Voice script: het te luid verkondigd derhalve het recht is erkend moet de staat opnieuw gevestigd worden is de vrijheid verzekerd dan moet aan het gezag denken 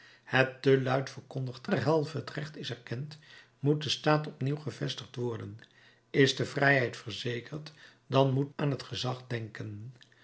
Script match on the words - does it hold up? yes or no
yes